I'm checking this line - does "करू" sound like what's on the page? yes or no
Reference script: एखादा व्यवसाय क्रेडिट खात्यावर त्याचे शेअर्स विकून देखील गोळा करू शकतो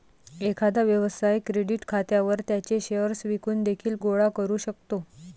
yes